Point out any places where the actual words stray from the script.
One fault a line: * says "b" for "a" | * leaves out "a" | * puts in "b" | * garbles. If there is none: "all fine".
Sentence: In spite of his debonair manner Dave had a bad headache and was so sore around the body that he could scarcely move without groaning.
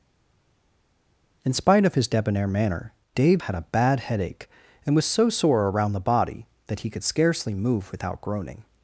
all fine